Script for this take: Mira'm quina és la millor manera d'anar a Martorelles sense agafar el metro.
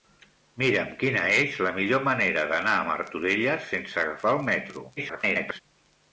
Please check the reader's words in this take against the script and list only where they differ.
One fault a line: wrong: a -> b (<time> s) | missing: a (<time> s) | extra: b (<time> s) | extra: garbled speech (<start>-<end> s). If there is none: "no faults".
extra: garbled speech (5.0-5.6 s)